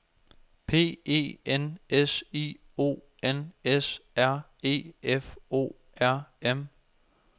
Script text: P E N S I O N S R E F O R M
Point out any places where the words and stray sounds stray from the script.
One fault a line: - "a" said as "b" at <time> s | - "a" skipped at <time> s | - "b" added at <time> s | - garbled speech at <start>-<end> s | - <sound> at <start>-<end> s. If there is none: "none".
none